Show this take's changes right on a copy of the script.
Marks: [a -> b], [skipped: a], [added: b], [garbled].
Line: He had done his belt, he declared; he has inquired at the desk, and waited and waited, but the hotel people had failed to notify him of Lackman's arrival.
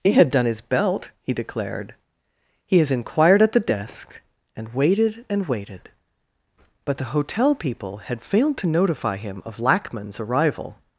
He had done his belt, he declared; he has inquired at the desk, and waited and waited, but the hotel people had failed to notify him of Lackman's arrival.